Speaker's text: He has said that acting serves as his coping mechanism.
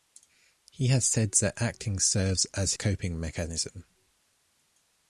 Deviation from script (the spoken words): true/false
true